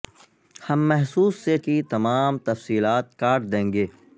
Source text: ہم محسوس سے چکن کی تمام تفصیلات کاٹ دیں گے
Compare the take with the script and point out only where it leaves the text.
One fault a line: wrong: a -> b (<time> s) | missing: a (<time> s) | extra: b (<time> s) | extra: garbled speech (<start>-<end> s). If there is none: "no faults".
missing: چکن (1.6 s)